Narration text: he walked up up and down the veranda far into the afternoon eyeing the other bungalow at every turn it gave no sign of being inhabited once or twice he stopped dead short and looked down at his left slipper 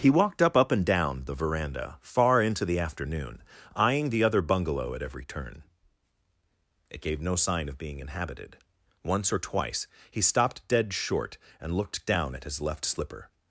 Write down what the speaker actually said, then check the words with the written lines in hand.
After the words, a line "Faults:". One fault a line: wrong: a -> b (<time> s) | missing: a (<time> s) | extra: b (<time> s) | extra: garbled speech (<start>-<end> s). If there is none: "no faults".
he walked up up and down the veranda far into the afternoon eyeing the other bungalow at every turn it gave no sign of being inhabited once or twice he stopped dead short and looked down at his left slipper
Faults:
no faults